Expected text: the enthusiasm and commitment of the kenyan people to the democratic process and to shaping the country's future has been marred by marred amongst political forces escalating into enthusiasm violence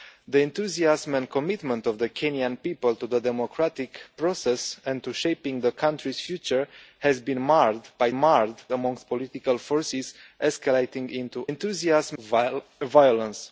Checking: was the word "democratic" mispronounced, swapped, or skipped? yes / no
no